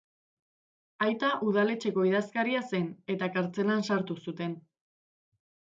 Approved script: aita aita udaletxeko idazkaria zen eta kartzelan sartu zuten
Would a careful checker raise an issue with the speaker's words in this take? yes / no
yes